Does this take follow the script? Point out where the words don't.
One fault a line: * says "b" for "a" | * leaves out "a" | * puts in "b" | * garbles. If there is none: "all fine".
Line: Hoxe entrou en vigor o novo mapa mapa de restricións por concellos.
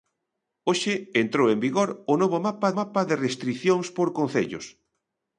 all fine